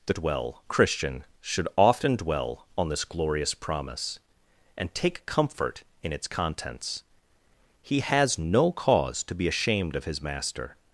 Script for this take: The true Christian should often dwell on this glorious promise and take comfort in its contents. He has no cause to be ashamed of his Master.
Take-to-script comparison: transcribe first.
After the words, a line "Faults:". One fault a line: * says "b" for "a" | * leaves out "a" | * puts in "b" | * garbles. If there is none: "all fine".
The dwell Christian should often dwell on this glorious promise and take comfort in its contents. He has no cause to be ashamed of his Master.
Faults:
* says "dwell" for "true"